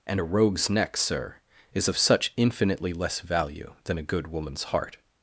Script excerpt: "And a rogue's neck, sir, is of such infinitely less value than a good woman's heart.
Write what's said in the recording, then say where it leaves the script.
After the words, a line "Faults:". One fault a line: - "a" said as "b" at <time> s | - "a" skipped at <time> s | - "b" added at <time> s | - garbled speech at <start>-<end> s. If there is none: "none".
"And a rogue's neck, sir, is of such infinitely less value than a good woman's heart.
Faults:
none